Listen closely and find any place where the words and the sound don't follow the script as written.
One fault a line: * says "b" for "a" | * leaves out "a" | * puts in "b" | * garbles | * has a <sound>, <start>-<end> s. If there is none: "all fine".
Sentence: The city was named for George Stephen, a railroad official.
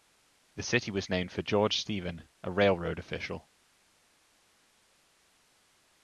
all fine